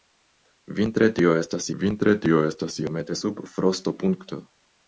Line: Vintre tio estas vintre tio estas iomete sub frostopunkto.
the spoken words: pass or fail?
pass